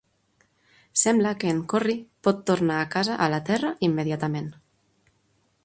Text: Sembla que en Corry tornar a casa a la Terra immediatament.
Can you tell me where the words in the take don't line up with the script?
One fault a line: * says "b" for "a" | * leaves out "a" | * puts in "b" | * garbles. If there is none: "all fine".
* puts in "pot"